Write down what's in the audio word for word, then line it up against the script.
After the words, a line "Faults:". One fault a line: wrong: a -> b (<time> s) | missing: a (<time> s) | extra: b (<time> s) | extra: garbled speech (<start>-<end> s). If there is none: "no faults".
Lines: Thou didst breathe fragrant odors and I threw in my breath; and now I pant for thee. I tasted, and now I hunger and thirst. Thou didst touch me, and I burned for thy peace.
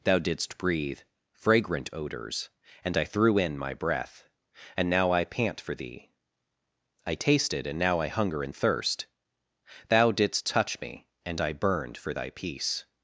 Thou didst breathe fragrant odors and I threw in my breath; and now I pant for thee. I tasted, and now I hunger and thirst. Thou didst touch me, and I burned for thy peace.
Faults:
no faults